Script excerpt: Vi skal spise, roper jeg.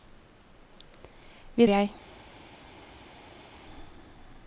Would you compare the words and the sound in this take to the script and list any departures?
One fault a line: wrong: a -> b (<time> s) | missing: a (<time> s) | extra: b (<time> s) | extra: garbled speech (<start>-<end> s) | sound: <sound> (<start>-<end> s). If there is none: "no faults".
missing: skal spise roper (1.7 s)